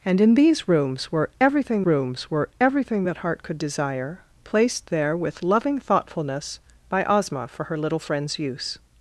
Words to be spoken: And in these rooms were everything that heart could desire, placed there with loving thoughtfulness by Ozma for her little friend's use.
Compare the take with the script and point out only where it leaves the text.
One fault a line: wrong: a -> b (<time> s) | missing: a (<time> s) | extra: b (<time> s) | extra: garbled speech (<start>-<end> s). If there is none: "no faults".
extra: rooms were everything (1.8 s)